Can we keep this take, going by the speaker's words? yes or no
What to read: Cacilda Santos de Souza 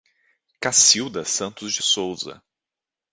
yes